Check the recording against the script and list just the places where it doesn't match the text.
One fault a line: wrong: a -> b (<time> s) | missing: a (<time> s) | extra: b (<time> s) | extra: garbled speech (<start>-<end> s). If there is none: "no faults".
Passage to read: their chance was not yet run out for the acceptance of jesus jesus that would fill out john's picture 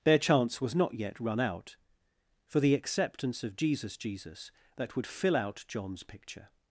no faults